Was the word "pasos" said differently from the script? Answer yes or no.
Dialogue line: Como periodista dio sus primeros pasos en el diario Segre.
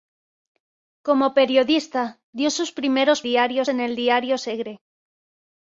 yes